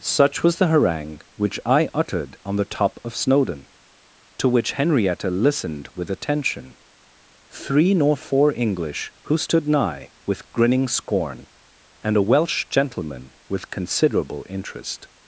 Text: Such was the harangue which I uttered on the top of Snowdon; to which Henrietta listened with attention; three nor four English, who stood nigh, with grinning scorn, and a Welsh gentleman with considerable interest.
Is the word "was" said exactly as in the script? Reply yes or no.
yes